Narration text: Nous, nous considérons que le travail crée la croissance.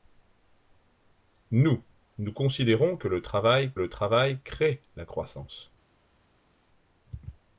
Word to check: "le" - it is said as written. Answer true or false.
true